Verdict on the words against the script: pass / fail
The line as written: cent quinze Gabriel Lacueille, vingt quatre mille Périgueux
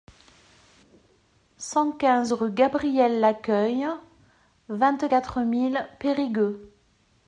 fail